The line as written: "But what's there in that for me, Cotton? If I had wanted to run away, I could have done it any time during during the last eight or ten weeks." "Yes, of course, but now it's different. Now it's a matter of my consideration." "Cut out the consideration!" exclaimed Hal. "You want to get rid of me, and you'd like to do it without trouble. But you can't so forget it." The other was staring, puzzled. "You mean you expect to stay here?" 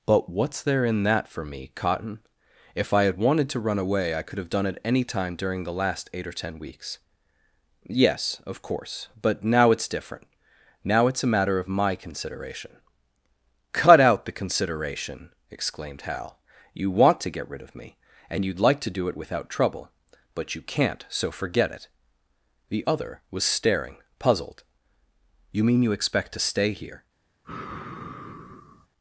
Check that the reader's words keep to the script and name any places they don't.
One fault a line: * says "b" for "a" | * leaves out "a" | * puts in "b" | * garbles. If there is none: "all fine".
* leaves out "during"